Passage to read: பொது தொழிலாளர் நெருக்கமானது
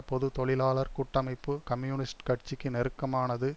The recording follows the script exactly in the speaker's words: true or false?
false